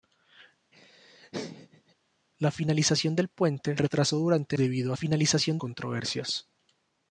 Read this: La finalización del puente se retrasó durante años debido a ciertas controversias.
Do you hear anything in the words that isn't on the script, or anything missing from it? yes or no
yes